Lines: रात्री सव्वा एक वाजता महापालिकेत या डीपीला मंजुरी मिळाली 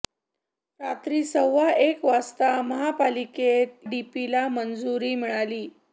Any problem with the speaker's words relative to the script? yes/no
yes